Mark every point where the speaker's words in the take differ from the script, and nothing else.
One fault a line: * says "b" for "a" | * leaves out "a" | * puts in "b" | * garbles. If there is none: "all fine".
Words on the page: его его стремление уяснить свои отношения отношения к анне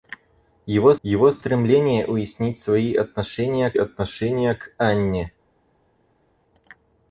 all fine